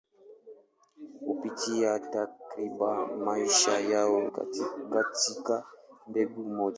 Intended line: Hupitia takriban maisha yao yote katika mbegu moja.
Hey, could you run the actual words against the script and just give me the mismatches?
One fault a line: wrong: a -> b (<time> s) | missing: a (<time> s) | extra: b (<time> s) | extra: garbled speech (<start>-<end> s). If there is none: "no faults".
missing: yote (4.2 s)